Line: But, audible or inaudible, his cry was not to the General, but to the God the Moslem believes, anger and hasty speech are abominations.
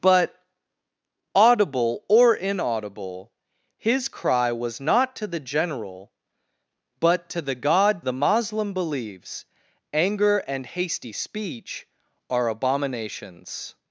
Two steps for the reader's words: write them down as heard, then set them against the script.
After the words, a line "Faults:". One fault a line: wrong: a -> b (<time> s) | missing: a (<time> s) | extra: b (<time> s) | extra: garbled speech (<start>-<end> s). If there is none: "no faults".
But, audible or inaudible, his cry was not to the General, but to the God the Moslem believes, anger and hasty speech are abominations.
Faults:
no faults